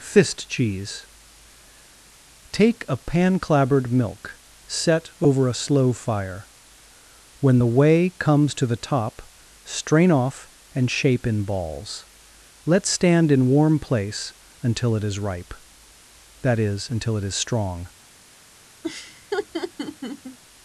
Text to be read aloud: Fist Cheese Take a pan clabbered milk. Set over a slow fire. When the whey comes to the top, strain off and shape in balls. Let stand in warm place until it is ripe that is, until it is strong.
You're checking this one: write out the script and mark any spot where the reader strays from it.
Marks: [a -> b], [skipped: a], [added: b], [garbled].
Fist Cheese Take a pan clabbered milk. Set over a slow fire. When the whey comes to the top, strain off and shape in balls. Let stand in warm place until it is ripe that is, until it is strong.